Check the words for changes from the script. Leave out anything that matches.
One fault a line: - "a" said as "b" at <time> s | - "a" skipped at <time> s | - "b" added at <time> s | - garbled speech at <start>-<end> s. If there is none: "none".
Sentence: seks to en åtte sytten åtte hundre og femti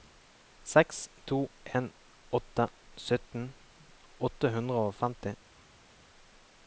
none